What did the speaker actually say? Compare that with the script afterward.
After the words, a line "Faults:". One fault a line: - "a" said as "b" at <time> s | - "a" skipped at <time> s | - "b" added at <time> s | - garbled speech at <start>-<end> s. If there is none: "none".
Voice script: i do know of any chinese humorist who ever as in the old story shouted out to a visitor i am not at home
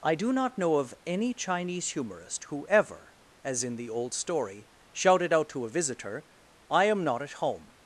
i do not know of any chinese humorist who ever as in the old story shouted out to a visitor i am not at home
Faults:
- "not" added at 0.3 s